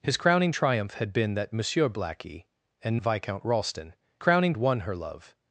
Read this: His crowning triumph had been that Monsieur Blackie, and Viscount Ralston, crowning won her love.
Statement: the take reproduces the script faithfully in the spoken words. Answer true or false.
true